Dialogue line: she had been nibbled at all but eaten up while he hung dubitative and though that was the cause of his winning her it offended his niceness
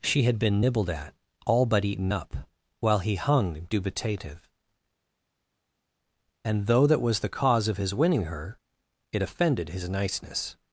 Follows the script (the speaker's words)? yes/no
yes